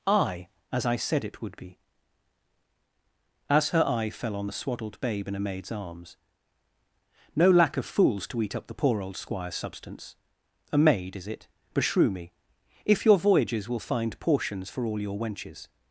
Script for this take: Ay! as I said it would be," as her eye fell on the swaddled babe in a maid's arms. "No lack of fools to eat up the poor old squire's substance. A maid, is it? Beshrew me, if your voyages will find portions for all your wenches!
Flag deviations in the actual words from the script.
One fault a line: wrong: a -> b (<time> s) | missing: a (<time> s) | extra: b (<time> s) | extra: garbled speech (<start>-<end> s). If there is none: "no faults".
no faults